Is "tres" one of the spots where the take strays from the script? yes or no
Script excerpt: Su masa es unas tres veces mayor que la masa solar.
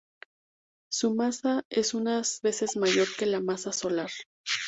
yes